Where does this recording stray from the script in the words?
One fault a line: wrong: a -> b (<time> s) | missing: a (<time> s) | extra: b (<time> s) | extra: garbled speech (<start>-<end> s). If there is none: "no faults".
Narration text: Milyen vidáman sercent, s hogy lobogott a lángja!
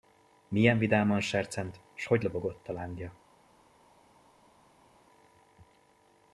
no faults